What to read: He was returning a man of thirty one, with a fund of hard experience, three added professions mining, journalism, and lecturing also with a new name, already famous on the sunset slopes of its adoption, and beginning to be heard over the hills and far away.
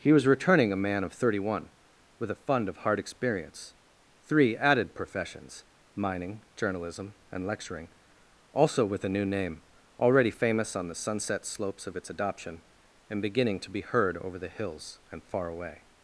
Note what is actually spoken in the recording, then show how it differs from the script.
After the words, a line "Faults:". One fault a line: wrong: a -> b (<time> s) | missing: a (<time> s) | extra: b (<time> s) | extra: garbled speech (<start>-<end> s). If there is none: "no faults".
He was returning a man of thirty one, with a fund of hard experience, three added professions mining, journalism, and lecturing also with a new name, already famous on the sunset slopes of its adoption, and beginning to be heard over the hills and far away.
Faults:
no faults